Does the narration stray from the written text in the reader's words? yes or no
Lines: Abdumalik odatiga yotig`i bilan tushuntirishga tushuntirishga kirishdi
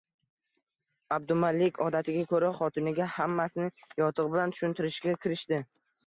yes